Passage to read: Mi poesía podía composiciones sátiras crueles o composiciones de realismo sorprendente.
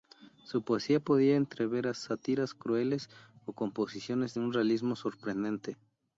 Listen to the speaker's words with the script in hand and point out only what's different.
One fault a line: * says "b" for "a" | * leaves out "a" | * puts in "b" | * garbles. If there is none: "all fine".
* says "Su" for "Mi"
* says "entrever" for "composiciones"
* puts in "un"